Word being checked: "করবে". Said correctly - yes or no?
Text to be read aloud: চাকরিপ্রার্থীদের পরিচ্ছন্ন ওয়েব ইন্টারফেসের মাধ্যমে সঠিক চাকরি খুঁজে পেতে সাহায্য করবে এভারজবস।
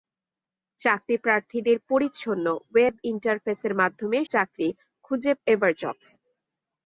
no